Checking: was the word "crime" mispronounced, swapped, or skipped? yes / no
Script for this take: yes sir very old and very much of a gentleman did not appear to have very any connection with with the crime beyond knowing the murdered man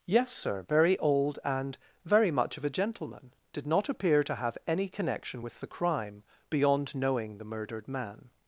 no